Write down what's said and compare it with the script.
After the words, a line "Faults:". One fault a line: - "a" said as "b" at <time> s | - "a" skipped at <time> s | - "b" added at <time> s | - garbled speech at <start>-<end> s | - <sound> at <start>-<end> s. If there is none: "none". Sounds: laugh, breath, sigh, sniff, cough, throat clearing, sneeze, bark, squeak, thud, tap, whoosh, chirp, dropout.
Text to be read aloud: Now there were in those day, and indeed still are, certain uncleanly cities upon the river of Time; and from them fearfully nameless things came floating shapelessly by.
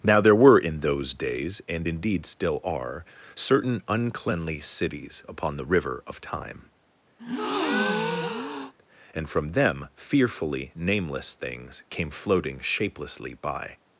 Now there were in those days, and indeed still are, certain uncleanly cities upon the river of Time; and from them fearfully nameless things came floating shapelessly by.
Faults:
- "day" said as "days" at 1.1 s
- breath at 7.2-8.7 s